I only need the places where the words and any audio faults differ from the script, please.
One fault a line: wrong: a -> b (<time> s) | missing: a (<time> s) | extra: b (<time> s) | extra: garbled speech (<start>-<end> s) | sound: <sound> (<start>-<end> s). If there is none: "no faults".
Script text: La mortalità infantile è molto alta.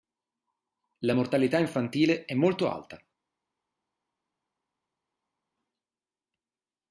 no faults